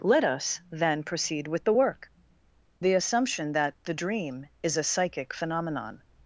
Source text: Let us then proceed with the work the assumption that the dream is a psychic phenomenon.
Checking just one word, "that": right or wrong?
right